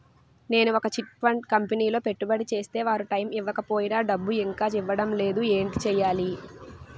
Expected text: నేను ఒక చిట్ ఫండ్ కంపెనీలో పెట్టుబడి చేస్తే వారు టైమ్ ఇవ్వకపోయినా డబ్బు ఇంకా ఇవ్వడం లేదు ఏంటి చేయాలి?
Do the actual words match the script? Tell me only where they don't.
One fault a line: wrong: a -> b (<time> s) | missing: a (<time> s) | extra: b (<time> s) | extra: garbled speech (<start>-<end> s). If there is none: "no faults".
no faults